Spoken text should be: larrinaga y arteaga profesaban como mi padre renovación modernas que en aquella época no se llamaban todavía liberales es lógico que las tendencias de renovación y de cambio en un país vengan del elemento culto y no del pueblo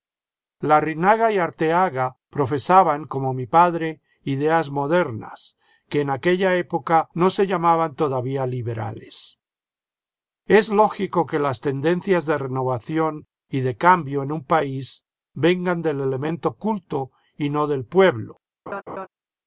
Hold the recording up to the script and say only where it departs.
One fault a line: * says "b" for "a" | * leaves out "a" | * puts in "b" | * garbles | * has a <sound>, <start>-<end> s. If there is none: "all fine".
* says "ideas" for "renovación"
* has a laugh, 18.7-19.1 s